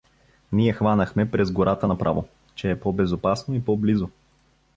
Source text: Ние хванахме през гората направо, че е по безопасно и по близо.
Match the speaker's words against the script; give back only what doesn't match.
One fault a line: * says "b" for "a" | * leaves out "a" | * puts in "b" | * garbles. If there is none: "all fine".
all fine